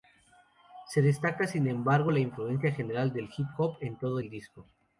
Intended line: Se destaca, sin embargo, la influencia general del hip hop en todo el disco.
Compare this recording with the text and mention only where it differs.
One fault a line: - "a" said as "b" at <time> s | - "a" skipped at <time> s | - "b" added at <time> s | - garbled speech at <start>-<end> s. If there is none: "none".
none